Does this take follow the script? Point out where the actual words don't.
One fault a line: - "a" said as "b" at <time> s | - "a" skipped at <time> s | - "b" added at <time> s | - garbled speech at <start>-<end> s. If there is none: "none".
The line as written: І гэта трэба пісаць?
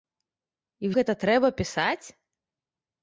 none